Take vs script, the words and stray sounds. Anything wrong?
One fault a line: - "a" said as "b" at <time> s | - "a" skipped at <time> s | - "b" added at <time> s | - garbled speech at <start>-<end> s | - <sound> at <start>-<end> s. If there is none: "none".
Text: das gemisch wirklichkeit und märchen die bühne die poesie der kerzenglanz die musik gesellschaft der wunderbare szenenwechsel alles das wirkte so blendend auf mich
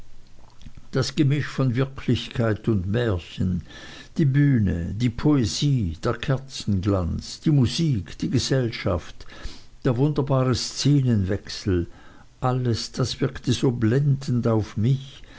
- "von" added at 1.4 s
- "die" added at 8.2 s